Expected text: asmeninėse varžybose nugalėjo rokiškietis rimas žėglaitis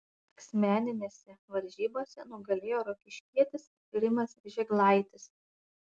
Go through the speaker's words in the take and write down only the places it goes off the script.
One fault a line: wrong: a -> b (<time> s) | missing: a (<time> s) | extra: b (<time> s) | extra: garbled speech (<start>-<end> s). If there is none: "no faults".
no faults